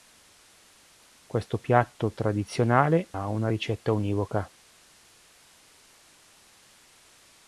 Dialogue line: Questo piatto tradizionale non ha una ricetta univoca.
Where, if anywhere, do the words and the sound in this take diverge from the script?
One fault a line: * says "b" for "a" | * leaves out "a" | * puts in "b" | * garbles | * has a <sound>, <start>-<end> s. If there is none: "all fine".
* leaves out "non"